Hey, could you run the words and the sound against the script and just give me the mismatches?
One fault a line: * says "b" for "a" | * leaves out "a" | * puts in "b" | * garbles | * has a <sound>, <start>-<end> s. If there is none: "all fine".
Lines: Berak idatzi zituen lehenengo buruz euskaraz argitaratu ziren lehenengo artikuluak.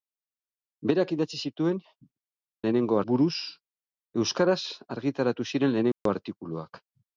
* has a dropout, 5.9-6.1 s